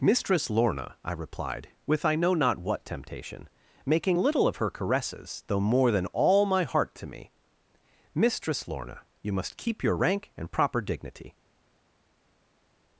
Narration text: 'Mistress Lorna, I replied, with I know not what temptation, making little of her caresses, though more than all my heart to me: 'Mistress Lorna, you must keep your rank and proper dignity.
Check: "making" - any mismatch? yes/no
no